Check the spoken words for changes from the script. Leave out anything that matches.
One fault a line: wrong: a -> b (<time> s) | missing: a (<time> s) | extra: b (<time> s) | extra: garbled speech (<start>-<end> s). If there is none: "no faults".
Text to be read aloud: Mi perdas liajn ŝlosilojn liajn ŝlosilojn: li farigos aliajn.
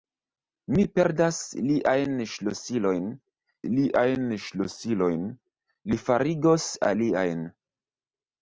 no faults